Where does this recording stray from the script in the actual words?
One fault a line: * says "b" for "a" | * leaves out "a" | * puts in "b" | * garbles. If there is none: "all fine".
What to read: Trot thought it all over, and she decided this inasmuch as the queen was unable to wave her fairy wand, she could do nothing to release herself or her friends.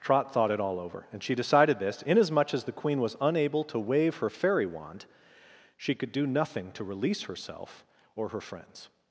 all fine